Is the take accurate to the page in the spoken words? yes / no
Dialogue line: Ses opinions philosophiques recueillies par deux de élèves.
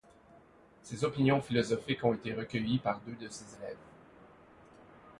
no